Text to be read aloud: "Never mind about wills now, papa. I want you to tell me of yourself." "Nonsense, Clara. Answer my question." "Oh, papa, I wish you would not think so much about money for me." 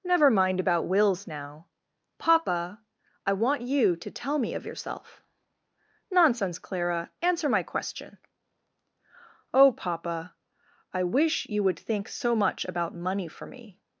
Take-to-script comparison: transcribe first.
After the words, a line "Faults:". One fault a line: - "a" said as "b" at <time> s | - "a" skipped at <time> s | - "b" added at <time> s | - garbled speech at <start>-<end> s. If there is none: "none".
"Never mind about wills now, papa. I want you to tell me of yourself." "Nonsense, Clara. Answer my question." "Oh, papa, I wish you would think so much about money for me."
Faults:
- "not" skipped at 11.8 s